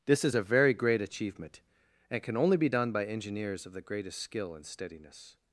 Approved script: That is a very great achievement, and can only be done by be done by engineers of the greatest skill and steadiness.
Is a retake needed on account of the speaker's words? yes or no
yes